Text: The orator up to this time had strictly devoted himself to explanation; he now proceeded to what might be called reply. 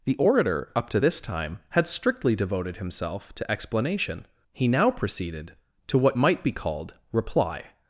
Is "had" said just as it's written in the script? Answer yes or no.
yes